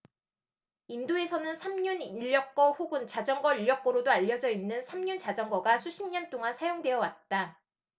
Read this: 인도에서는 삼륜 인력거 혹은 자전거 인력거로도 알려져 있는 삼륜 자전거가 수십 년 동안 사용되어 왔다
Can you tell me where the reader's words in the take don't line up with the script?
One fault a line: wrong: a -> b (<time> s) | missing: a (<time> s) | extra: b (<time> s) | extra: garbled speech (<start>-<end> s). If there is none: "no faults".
no faults